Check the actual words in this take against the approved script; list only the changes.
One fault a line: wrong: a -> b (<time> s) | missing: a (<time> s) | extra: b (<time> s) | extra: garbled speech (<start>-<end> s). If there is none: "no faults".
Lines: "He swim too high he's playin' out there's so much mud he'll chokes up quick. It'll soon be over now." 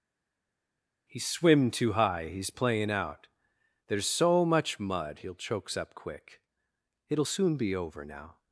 no faults